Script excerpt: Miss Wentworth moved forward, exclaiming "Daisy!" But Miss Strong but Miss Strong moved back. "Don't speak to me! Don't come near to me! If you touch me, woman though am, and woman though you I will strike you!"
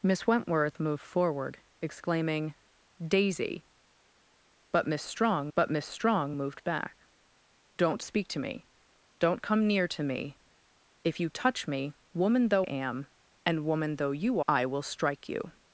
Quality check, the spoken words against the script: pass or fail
pass